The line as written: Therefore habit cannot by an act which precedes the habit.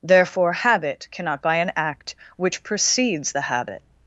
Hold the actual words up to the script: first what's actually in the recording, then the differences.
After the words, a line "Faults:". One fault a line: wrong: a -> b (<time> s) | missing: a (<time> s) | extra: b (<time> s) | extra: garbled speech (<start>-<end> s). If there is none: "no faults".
Therefore habit cannot by an act which precedes the habit.
Faults:
no faults